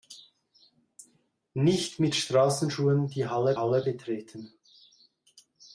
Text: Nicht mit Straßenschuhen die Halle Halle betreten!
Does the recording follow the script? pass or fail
pass